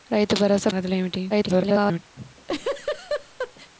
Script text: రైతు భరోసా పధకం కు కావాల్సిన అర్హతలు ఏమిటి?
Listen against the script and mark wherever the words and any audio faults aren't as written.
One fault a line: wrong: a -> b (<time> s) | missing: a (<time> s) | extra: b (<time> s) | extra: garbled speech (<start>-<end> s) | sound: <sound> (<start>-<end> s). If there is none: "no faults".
missing: పధకం కు కావాల్సిన (0.7 s)
extra: garbled speech (1.3-2.0 s)
sound: laugh (2.2-3.7 s)